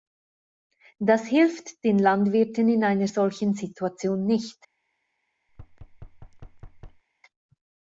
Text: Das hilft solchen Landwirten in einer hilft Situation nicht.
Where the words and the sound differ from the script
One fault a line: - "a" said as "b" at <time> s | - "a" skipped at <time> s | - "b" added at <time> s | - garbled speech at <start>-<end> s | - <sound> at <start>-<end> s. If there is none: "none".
- "solchen" said as "den" at 1.8 s
- "hilft" said as "solchen" at 3.0 s
- thud at 5.5-7.0 s